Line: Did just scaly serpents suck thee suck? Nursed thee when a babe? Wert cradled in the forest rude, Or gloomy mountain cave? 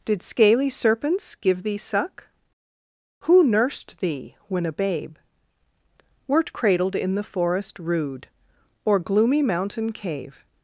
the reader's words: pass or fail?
fail